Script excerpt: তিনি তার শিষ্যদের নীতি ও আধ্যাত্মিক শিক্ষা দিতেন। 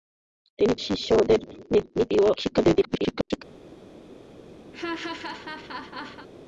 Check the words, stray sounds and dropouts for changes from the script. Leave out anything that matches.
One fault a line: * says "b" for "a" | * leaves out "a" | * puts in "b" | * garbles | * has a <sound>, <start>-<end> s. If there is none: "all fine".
* leaves out "তার"
* leaves out "আধ্যাত্মিক"
* garbles
* has a laugh, 4.7-6.3 s